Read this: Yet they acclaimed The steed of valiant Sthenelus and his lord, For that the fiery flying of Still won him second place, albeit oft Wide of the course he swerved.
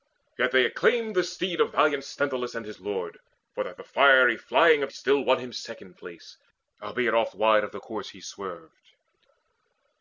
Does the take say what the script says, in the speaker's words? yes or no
yes